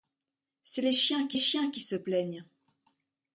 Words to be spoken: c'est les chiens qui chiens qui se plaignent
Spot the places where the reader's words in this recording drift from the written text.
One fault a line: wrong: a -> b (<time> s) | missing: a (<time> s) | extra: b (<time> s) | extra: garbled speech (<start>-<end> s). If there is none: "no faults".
no faults